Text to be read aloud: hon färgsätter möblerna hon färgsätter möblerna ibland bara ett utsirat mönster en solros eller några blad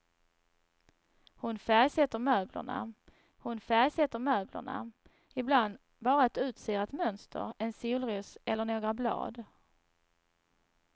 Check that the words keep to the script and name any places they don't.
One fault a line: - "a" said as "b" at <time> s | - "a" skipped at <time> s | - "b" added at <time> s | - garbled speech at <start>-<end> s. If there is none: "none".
none